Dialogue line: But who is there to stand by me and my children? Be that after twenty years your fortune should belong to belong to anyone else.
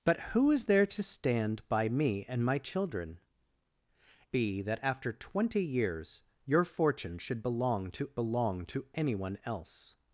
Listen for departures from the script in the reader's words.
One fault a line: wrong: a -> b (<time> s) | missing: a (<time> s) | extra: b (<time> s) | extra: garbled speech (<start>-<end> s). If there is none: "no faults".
no faults